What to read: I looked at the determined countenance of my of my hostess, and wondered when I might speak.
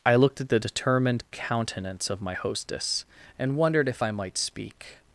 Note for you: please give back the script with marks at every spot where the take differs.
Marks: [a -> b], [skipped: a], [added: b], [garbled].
I looked at the determined countenance of my [skipped: of my] hostess, and wondered [when -> if] I might speak.